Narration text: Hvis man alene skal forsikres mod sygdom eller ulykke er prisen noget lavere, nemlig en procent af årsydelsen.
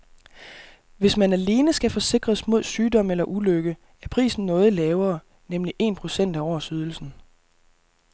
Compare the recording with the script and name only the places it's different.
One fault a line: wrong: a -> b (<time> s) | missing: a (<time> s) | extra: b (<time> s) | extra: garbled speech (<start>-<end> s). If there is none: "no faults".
no faults